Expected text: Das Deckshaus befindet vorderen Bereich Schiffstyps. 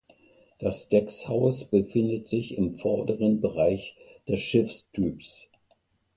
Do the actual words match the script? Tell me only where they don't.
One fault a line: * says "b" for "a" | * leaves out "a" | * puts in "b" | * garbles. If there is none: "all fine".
* puts in "sich im"
* puts in "des"